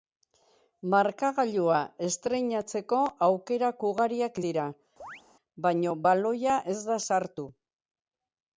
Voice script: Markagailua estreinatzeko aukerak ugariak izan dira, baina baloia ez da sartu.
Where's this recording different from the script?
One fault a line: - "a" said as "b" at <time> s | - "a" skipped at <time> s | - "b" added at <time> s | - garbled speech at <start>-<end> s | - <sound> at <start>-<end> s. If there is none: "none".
- "izan" skipped at 4.4 s
- chirp at 5.0-5.2 s